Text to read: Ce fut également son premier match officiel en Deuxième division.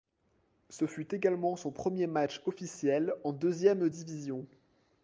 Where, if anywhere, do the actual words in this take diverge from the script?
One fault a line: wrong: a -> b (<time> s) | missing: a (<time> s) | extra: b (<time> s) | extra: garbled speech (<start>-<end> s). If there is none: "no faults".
no faults